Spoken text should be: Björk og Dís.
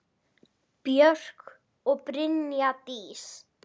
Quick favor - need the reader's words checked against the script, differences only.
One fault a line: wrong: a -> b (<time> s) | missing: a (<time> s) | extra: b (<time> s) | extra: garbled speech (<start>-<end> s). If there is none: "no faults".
extra: Brynja (2.1 s)